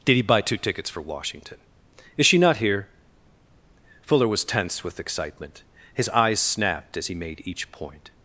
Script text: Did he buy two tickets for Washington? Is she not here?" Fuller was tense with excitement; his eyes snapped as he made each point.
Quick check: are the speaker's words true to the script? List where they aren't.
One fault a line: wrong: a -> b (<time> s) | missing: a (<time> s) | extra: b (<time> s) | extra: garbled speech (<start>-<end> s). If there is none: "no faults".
no faults